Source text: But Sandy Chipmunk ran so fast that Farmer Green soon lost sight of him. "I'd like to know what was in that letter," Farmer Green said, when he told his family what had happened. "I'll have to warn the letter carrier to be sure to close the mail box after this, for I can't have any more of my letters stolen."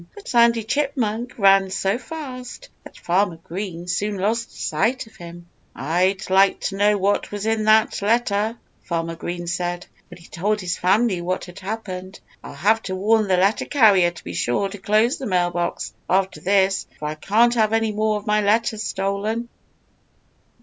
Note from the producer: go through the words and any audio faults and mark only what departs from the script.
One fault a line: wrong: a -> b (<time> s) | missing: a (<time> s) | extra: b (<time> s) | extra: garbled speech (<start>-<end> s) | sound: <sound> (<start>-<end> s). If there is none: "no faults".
no faults